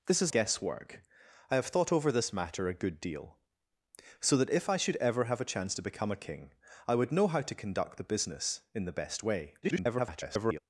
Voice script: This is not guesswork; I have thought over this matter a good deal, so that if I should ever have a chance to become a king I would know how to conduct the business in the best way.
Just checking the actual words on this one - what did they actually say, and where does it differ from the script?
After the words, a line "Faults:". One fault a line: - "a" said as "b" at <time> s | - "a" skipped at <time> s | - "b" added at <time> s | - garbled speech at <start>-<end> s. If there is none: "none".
This is guesswork; I have thought over this matter a good deal, so that if I should ever have a chance to become a king I would know how to conduct the business in the best way. [garbled]
Faults:
- "not" skipped at 0.3 s
- garbled speech at 9.6-10.6 s